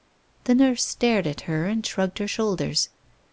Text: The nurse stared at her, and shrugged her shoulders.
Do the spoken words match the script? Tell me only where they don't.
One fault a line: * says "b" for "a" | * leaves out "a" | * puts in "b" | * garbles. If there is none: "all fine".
all fine